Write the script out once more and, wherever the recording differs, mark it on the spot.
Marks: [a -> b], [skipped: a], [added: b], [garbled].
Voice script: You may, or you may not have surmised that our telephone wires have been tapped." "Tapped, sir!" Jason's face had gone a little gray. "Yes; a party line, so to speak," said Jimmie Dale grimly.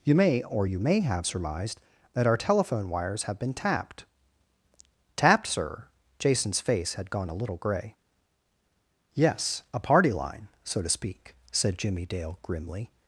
You may, or you may [skipped: not] have surmised that our telephone wires have been tapped." "Tapped, sir!" Jason's face had gone a little gray. "Yes; a party line, so to speak," said Jimmie Dale grimly.